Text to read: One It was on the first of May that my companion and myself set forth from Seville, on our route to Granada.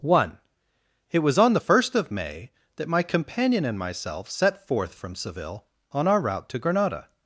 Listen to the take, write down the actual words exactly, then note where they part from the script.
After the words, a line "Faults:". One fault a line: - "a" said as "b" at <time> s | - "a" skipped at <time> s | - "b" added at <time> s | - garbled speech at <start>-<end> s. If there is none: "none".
One It was on the first of May that my companion and myself set forth from Seville, on our route to Granada.
Faults:
none